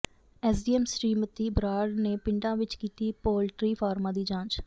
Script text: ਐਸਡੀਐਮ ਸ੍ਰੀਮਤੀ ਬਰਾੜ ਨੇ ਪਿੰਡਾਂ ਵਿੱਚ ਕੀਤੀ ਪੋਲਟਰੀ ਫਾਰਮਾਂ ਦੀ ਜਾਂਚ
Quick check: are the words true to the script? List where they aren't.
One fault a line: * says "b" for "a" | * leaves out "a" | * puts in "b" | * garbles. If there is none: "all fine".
all fine